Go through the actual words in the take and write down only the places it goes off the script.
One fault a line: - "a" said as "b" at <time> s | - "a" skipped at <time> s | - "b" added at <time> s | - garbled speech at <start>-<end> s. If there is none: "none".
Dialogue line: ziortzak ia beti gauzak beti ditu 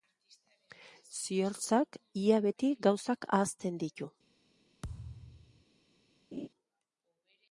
- "beti" said as "ahazten" at 3.3 s